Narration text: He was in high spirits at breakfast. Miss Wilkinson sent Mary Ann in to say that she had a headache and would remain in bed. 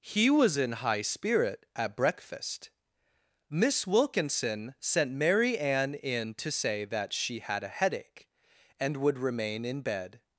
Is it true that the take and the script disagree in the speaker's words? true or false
true